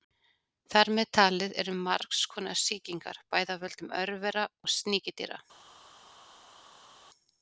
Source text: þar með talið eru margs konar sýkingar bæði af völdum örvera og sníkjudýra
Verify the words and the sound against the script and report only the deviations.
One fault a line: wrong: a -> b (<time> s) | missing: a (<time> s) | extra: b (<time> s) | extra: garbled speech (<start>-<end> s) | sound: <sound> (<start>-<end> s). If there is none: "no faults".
no faults